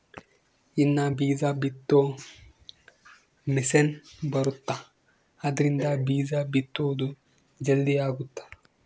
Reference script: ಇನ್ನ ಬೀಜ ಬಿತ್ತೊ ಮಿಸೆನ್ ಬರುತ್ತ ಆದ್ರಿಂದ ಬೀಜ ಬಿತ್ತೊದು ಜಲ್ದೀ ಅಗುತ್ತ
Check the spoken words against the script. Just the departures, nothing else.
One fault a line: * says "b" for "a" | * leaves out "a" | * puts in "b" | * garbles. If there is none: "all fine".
all fine